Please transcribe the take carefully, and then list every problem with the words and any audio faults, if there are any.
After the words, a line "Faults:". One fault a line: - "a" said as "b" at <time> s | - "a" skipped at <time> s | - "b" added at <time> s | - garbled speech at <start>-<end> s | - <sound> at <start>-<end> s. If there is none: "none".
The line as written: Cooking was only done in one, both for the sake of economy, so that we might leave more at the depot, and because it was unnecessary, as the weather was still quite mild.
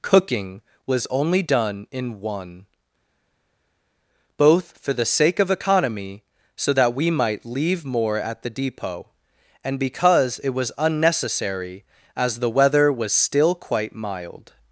Cooking was only done in one, both for the sake of economy, so that we might leave more at the depot, and because it was unnecessary, as the weather was still quite mild.
Faults:
none